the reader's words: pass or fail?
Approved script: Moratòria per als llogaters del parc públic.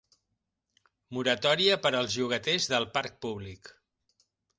pass